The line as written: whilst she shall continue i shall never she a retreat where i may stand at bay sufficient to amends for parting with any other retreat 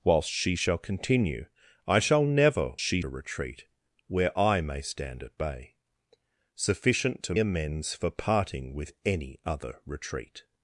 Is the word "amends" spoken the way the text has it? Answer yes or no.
yes